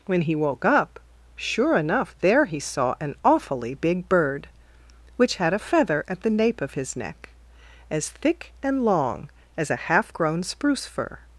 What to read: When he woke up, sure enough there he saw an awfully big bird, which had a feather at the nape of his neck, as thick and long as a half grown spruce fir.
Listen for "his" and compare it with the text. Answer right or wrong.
right